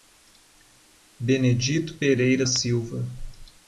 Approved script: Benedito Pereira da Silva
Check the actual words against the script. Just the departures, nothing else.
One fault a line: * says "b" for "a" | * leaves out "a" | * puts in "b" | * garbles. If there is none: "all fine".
* leaves out "da"